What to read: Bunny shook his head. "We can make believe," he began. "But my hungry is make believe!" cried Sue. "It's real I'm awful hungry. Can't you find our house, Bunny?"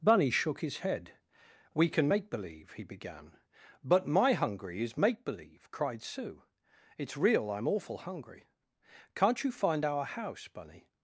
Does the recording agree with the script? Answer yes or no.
yes